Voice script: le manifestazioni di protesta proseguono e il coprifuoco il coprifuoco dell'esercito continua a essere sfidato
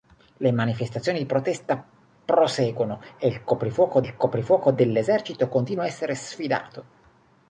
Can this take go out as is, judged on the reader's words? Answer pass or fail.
pass